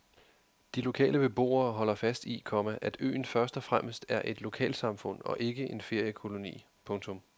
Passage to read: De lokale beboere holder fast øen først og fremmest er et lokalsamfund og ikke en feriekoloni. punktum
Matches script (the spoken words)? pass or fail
fail